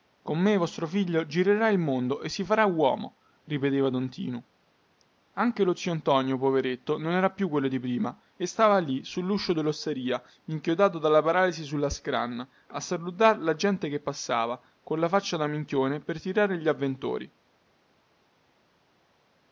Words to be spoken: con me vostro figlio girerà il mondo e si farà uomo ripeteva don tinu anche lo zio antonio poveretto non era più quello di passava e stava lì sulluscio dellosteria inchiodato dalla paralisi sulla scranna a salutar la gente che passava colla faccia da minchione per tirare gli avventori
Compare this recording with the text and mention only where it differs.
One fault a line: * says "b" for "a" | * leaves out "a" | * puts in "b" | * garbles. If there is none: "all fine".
* says "prima" for "passava"